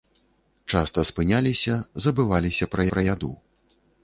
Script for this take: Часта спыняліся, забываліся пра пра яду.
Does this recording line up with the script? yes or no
yes